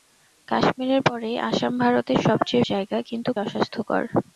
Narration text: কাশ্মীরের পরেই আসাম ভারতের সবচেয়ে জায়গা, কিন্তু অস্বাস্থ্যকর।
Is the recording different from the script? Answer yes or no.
no